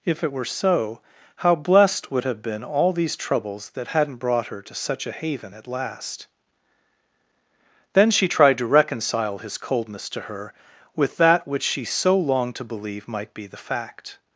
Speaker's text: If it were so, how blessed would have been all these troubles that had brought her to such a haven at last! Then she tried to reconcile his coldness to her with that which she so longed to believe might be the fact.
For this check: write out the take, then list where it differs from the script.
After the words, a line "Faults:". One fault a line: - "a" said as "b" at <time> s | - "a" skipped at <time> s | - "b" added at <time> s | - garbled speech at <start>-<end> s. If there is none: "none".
If it were so, how blessed would have been all these troubles that hadn't brought her to such a haven at last! Then she tried to reconcile his coldness to her with that which she so longed to believe might be the fact.
Faults:
- "had" said as "hadn't" at 3.9 s